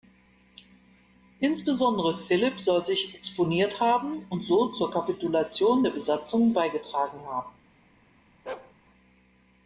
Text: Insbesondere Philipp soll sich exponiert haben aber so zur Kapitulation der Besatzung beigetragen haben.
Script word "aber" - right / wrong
wrong